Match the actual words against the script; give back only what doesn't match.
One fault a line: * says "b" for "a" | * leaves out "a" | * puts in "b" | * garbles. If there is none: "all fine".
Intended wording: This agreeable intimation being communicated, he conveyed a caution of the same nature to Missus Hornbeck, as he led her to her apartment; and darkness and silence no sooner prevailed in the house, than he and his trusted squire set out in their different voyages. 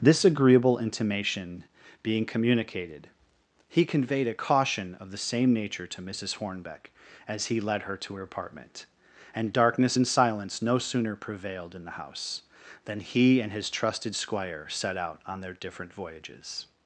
* says "on" for "in"